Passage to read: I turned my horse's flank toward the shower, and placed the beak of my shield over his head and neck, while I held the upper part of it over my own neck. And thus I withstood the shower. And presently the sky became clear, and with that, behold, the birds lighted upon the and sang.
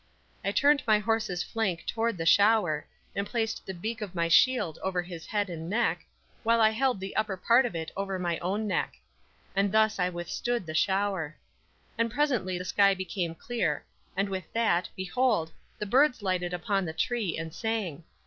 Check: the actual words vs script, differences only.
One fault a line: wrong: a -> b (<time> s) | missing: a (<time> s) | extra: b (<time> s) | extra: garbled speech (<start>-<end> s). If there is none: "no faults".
extra: tree (16.9 s)